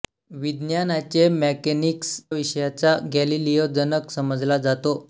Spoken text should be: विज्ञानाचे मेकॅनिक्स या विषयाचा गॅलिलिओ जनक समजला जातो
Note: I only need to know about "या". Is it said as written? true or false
false